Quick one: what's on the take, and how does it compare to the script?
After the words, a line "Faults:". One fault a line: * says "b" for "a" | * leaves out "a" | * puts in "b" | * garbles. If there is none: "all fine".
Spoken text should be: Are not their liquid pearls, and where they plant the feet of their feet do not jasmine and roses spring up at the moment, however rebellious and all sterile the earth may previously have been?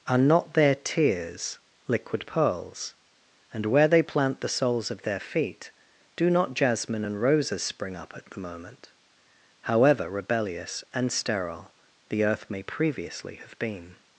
Are not their tears liquid pearls, and where they plant the soles of their feet do not jasmine and roses spring up at the moment, however rebellious and sterile the earth may previously have been?
Faults:
* puts in "tears"
* says "soles" for "feet"
* leaves out "all"